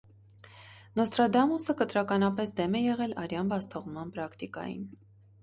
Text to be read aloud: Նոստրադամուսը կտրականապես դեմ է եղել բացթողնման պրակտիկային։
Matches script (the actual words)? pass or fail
fail